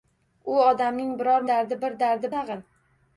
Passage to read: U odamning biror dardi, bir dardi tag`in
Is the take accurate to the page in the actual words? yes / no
yes